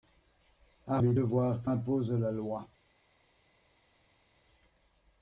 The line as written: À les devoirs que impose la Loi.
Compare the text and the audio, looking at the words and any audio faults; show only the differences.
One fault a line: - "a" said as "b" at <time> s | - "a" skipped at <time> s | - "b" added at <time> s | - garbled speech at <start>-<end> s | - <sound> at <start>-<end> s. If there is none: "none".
none